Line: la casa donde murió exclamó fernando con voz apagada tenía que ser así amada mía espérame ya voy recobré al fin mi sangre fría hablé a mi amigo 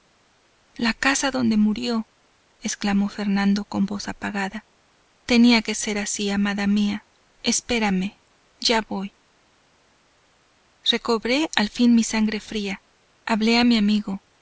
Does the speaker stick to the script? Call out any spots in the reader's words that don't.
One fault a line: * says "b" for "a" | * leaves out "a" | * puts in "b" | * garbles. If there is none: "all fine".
all fine